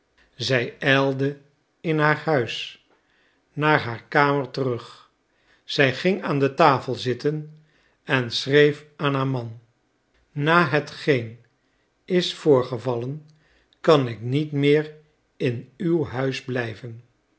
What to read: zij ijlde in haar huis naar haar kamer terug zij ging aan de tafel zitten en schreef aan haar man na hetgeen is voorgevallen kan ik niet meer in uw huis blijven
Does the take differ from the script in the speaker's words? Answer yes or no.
no